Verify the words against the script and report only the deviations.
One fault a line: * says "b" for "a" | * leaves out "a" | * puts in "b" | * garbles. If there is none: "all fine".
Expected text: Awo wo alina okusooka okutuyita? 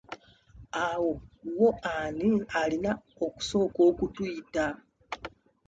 * puts in "ani"